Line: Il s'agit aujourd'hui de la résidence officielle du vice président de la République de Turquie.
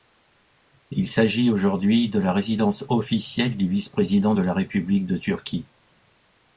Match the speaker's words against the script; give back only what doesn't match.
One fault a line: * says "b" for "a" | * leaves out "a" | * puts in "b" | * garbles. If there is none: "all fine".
all fine